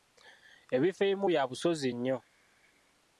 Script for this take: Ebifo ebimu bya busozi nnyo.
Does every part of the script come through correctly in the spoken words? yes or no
yes